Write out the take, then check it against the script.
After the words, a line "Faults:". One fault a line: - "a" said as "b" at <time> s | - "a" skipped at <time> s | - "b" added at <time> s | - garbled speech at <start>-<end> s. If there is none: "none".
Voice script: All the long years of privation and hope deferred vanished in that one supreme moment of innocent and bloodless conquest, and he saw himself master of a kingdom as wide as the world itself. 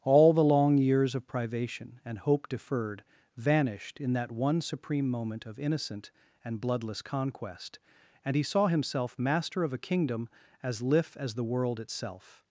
All the long years of privation and hope deferred vanished in that one supreme moment of innocent and bloodless conquest, and he saw himself master of a kingdom as lif as the world itself.
Faults:
- "wide" said as "lif" at 10.8 s